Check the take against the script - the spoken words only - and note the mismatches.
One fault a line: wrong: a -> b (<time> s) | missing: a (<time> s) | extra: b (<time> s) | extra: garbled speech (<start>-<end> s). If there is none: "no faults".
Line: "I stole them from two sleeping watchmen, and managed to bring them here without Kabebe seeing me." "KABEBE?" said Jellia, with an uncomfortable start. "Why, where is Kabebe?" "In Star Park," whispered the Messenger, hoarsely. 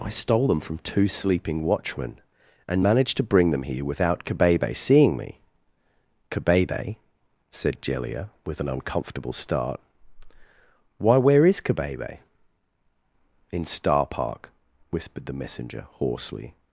no faults